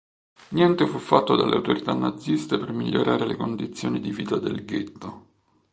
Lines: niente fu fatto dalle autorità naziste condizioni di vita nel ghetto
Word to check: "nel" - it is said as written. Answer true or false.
false